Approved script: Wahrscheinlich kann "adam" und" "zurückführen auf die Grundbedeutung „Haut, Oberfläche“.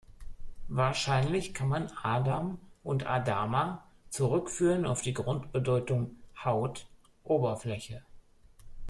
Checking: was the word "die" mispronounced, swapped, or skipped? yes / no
no